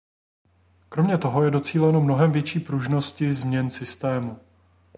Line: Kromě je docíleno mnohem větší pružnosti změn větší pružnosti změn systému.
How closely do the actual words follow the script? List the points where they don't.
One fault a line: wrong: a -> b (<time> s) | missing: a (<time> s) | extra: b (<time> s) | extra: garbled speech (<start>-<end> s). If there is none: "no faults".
extra: toho (1.2 s)
missing: větší pružnosti změn (3.7 s)